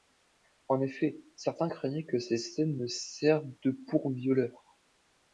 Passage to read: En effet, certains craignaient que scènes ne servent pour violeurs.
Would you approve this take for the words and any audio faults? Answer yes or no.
no